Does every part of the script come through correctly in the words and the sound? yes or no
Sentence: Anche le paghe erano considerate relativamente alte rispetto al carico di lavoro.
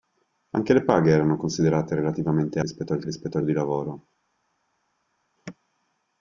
no